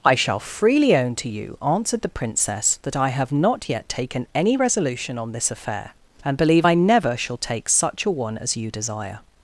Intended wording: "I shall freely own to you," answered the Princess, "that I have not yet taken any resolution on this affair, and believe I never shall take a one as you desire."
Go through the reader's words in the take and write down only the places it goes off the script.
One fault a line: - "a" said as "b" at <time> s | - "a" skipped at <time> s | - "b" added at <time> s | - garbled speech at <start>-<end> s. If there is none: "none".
- "such" added at 7.7 s